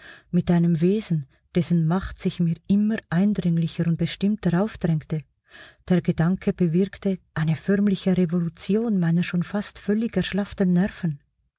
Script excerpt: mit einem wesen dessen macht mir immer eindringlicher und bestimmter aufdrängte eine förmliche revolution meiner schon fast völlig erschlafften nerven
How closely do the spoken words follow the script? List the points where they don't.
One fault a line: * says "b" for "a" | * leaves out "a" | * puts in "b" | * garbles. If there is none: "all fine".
* puts in "sich"
* puts in "der gedanke bewirkte"